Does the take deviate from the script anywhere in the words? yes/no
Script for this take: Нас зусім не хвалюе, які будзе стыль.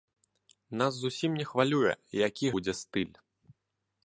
no